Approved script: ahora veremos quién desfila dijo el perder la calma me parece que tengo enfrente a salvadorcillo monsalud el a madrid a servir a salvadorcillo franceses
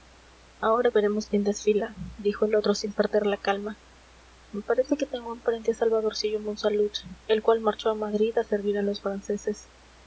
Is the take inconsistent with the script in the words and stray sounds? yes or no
yes